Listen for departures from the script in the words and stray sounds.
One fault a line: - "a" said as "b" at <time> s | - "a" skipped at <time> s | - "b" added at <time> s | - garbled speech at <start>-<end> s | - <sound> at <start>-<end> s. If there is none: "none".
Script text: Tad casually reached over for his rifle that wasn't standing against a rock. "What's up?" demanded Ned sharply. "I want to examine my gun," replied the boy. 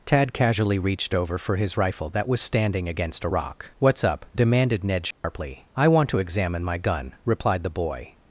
- "wasn't" said as "was" at 2.3 s
- dropout at 5.1-5.2 s